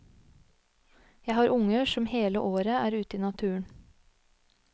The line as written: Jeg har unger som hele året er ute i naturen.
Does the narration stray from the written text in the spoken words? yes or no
no